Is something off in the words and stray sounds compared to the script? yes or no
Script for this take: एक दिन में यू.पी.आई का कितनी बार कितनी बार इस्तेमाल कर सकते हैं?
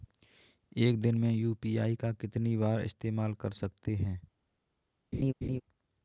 yes